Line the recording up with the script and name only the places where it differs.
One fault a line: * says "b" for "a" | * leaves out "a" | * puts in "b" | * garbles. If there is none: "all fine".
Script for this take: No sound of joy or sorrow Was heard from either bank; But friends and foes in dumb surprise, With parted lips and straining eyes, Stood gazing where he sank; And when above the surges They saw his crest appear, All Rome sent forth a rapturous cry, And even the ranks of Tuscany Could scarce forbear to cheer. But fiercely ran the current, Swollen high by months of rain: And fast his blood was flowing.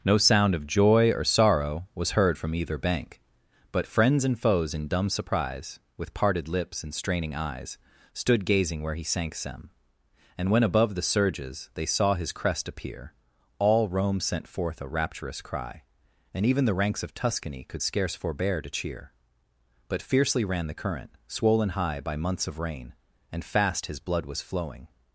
* puts in "them"